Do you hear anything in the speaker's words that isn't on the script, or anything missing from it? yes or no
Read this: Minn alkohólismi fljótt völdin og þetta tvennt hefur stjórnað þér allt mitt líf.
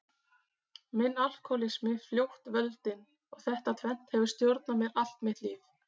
yes